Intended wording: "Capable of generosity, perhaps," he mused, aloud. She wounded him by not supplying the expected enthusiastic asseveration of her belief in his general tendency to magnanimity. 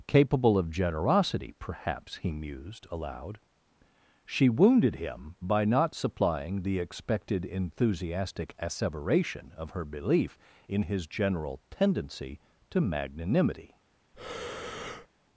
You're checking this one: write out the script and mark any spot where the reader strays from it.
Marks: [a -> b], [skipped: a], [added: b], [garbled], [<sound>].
"Capable of generosity, perhaps," he mused, aloud. She wounded him by not supplying the expected enthusiastic asseveration of her belief in his general tendency to magnanimity. [breath]